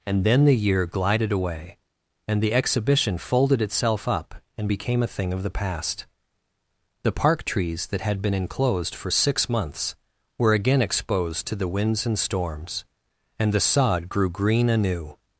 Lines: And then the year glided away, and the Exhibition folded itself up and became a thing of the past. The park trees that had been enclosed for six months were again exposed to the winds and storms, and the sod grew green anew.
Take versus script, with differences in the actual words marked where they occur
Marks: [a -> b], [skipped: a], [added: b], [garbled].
And then the year glided away, and the Exhibition folded itself up and became a thing of the past. The park trees that had been enclosed for six months were again exposed to the winds and storms, and the sod grew green anew.